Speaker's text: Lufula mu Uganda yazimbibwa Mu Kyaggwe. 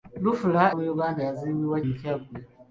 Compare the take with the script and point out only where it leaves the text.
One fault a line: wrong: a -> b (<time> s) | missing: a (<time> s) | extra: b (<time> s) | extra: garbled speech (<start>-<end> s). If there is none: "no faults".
no faults